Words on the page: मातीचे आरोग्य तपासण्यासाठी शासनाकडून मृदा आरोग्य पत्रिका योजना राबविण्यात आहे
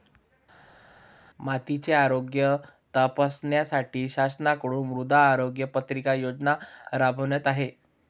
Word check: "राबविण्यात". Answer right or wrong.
right